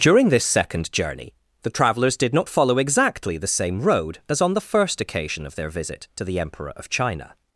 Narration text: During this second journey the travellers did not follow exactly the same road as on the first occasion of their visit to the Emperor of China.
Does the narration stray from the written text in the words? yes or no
no